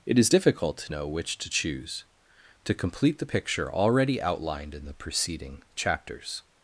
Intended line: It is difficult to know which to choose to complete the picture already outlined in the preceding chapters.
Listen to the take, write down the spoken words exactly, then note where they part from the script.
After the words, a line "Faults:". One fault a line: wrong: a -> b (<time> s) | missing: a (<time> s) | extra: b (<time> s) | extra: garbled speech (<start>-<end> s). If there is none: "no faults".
It is difficult to know which to choose to complete the picture already outlined in the preceding chapters.
Faults:
no faults